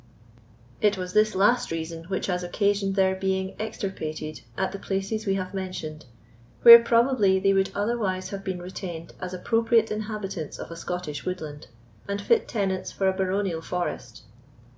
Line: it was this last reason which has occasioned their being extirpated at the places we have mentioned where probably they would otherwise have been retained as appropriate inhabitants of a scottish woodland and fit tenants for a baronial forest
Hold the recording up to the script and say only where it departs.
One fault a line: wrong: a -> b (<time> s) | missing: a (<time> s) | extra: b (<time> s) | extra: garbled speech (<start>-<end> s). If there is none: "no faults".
no faults